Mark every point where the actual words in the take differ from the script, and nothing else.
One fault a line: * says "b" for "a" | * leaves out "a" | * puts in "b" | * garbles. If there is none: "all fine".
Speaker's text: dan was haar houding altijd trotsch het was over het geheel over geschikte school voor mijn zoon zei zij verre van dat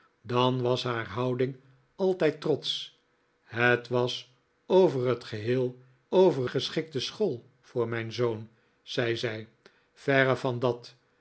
all fine